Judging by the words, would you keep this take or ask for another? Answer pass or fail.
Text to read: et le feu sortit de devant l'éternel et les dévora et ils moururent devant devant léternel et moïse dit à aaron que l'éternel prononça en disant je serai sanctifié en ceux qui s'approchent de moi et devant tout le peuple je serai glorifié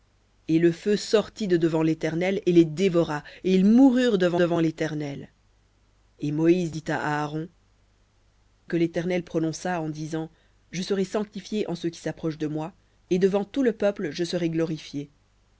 pass